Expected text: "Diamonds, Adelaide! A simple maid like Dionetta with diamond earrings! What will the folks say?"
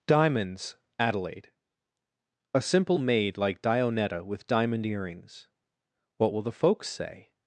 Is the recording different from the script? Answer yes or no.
no